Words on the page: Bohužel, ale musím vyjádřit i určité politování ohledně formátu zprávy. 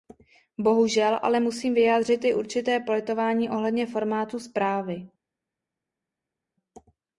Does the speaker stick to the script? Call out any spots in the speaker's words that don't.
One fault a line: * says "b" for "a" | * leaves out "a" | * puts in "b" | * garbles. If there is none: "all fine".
all fine